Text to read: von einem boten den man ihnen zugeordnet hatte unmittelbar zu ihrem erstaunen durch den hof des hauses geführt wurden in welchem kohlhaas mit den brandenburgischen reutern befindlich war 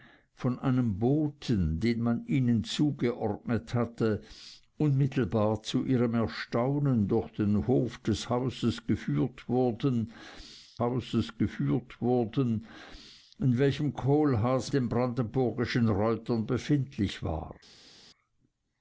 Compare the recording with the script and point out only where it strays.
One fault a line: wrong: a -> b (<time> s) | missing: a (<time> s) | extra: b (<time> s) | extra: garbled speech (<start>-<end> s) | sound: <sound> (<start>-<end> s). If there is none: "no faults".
extra: hauses geführt wurden (10.8 s)
missing: mit (14.7 s)